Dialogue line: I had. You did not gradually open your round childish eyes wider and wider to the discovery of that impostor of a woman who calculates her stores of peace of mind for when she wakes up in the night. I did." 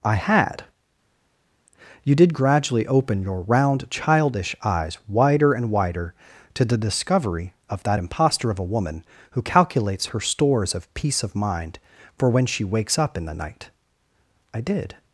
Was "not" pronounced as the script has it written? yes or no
no